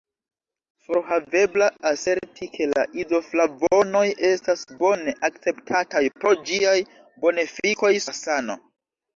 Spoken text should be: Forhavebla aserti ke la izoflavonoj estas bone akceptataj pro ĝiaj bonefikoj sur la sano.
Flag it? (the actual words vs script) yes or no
yes